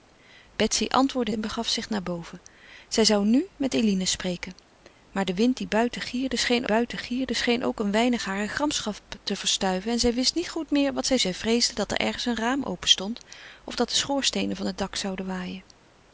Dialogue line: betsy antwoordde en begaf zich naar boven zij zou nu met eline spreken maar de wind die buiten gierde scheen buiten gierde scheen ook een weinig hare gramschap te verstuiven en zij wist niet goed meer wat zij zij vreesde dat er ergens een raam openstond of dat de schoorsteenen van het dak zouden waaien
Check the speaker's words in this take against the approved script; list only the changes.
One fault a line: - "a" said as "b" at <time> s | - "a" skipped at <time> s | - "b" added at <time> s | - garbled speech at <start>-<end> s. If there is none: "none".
none